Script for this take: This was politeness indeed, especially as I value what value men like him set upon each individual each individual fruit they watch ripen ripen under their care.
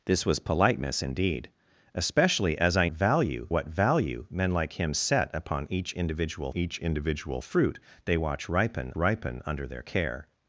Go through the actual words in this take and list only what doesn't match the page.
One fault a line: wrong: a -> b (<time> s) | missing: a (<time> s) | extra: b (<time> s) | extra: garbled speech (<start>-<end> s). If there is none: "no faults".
no faults